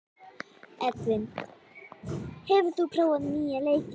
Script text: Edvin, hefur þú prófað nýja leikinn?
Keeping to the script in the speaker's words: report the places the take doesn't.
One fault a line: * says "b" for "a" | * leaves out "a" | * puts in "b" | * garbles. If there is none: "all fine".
all fine